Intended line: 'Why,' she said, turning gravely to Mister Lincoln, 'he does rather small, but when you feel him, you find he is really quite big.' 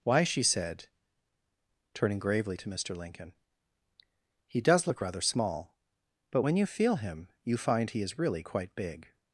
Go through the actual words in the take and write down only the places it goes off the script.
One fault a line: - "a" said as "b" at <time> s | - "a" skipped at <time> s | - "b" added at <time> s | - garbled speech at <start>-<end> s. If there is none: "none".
- "look" added at 4.9 s